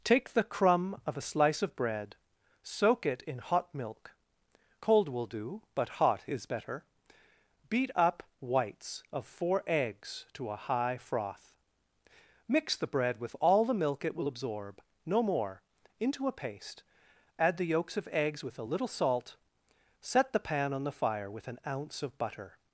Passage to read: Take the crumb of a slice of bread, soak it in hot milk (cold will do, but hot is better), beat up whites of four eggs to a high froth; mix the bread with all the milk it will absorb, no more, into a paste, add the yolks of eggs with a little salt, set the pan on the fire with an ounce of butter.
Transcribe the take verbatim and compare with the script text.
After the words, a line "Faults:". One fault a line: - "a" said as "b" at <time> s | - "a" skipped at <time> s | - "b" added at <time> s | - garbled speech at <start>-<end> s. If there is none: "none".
Take the crumb of a slice of bread, soak it in hot milk (cold will do, but hot is better), beat up whites of four eggs to a high froth; mix the bread with all the milk it will absorb, no more, into a paste, add the yolks of eggs with a little salt, set the pan on the fire with an ounce of butter.
Faults:
none